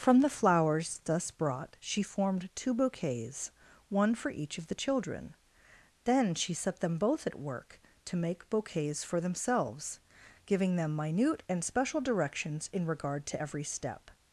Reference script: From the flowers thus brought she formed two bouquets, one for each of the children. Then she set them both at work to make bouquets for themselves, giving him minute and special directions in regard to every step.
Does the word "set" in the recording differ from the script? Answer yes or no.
no